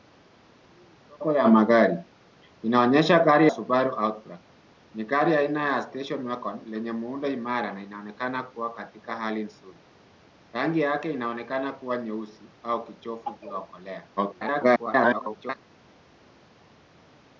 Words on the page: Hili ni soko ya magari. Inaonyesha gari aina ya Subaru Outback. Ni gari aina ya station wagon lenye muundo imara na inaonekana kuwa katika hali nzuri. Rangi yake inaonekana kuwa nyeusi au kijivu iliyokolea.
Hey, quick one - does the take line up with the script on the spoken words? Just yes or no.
no